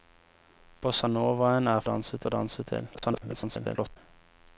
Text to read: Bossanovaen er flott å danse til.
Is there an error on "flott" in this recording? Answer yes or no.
yes